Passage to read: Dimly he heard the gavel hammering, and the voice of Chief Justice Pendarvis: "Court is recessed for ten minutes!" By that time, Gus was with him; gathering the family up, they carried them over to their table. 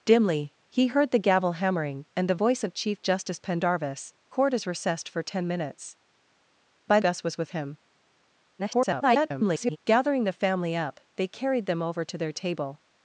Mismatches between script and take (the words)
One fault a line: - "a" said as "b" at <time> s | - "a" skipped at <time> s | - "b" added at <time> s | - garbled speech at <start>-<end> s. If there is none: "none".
- "that time" skipped at 7.0 s
- garbled speech at 8.6-9.8 s